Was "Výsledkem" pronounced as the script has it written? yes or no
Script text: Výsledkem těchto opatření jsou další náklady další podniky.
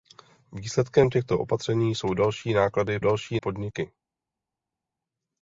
yes